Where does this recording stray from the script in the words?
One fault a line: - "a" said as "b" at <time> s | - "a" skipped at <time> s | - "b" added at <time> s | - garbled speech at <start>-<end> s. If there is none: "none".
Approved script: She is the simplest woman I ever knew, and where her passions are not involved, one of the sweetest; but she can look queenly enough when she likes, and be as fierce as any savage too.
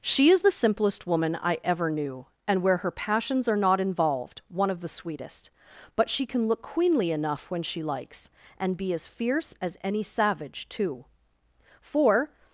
- "For" added at 11.8 s